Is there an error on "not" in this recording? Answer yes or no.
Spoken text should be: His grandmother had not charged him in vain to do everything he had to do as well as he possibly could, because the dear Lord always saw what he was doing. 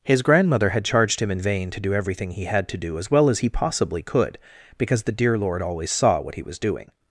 yes